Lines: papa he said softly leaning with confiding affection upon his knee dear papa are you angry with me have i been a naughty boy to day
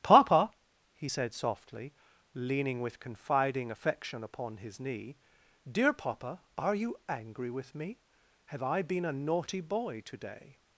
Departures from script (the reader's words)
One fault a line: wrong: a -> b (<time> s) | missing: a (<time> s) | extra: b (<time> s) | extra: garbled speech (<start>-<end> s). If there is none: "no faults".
no faults